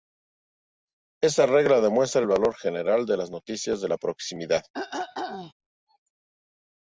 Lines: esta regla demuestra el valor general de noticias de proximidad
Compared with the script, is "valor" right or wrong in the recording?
right